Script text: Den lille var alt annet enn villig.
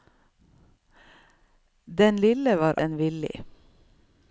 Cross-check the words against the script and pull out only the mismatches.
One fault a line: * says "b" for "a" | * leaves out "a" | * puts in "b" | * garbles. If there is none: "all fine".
* leaves out "alt annet"